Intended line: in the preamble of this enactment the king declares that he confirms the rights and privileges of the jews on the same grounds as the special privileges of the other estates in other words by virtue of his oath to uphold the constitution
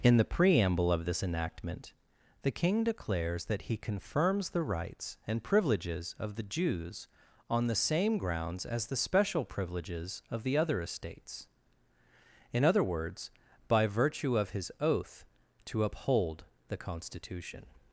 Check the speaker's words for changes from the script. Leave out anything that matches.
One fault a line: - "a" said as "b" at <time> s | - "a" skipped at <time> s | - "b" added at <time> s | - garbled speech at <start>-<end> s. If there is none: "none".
none